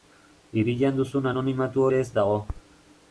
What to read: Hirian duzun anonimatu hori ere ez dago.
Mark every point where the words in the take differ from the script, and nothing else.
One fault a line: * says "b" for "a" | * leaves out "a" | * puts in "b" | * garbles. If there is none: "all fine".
* leaves out "hori"